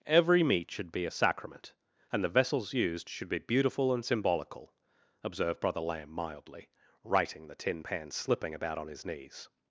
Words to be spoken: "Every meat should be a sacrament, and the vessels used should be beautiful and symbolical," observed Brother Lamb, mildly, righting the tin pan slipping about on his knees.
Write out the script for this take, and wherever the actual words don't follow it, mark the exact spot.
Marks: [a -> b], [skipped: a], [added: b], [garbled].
"Every meat should be a sacrament, and the vessels used should be beautiful and symbolical," observed Brother Lamb, mildly, righting the tin pan slipping about on his knees.